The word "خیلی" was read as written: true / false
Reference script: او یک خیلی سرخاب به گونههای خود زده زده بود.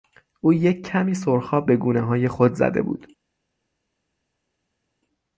false